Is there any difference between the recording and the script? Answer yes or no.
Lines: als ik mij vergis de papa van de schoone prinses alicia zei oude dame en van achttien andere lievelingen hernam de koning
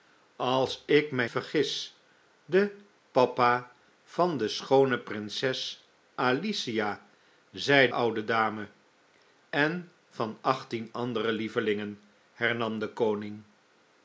no